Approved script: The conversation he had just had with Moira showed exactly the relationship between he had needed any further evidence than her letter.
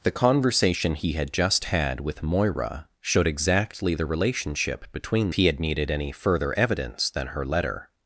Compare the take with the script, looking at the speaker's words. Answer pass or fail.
pass